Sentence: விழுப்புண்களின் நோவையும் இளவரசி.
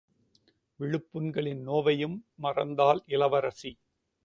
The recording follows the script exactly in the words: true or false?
false